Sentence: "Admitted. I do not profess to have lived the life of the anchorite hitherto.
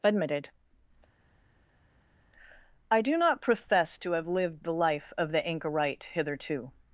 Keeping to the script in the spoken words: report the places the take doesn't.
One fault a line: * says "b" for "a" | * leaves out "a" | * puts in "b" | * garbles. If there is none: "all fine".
all fine